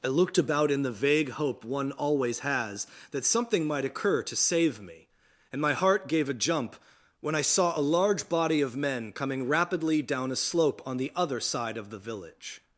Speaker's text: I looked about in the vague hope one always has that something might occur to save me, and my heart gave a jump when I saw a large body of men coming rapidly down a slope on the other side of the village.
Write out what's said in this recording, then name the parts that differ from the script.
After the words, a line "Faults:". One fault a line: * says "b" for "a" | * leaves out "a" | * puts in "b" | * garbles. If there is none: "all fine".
I looked about in the vague hope one always has that something might occur to save me, and my heart gave a jump when I saw a large body of men coming rapidly down a slope on the other side of the village.
Faults:
all fine